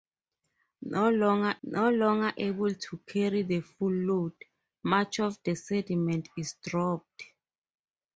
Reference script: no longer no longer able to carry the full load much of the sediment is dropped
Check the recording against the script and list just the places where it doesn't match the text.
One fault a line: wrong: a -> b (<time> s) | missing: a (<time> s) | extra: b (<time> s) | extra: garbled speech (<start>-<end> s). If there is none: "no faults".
no faults